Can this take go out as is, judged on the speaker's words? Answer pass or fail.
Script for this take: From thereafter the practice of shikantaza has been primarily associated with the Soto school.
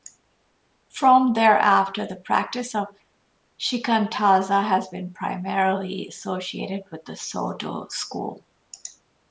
pass